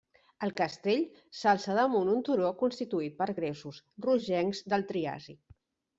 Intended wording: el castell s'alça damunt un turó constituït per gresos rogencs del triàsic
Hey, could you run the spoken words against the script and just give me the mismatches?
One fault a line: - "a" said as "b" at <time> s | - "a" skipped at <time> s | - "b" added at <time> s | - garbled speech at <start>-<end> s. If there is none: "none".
none